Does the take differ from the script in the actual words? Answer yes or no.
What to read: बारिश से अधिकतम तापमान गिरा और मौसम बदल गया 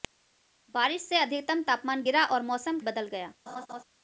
no